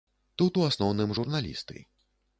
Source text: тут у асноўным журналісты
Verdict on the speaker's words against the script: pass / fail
pass